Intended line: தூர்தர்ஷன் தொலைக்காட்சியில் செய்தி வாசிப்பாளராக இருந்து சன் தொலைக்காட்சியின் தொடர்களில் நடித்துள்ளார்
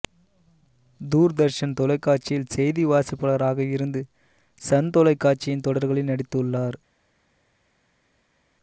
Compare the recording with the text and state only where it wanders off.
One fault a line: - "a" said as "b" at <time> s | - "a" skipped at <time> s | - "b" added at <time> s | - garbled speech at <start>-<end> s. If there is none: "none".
none